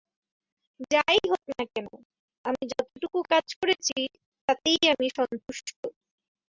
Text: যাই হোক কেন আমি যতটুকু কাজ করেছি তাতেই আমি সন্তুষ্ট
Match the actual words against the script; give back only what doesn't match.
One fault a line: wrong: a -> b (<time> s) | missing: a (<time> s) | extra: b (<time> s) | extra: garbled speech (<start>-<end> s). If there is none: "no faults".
extra: না (1.5 s)